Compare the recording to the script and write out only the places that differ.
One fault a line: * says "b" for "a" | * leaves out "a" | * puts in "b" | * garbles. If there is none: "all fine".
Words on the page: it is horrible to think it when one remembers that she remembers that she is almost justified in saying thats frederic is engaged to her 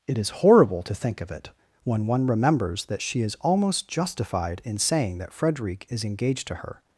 * puts in "of"
* leaves out "remembers that she"
* says "that" for "thats"